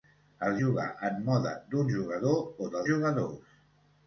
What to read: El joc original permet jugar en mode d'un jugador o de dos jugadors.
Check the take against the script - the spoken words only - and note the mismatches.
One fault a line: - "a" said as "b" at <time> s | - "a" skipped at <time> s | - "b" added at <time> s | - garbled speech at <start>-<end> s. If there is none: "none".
- "joc original permet" skipped at 0.6 s
- "dos" skipped at 2.8 s